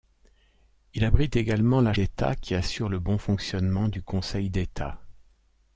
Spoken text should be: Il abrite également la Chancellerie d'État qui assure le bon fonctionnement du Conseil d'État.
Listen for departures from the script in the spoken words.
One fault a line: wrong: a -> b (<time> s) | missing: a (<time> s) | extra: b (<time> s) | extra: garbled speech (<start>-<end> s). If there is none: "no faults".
missing: Chancellerie (1.9 s)